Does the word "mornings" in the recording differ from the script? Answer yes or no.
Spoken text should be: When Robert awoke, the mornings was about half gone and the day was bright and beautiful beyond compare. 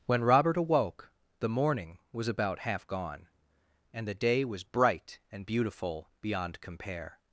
yes